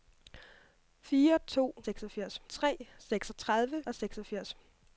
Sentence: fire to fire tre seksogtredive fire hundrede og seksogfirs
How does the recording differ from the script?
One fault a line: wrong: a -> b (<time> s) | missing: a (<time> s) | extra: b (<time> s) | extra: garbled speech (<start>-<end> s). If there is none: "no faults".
wrong: fire -> seksogfirs (1.8 s)
missing: fire hundrede (3.8 s)